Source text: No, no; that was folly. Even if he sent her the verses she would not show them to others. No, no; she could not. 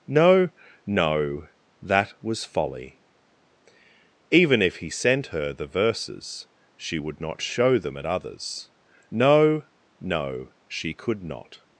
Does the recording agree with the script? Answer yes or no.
no